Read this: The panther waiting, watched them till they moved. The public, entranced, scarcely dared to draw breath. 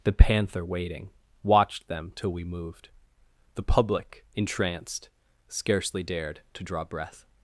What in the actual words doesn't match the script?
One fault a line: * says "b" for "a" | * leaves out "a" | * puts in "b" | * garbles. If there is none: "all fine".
* says "we" for "they"